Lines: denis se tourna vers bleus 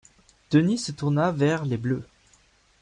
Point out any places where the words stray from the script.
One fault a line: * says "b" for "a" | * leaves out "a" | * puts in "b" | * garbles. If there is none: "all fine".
* puts in "les"